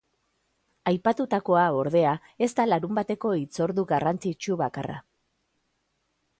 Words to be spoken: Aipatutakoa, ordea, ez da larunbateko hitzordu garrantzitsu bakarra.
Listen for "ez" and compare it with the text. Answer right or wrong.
right